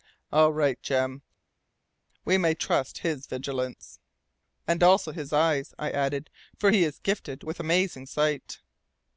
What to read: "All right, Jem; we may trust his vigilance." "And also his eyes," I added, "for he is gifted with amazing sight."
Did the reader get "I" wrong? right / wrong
right